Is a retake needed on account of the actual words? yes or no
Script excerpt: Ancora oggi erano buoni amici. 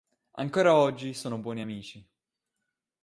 yes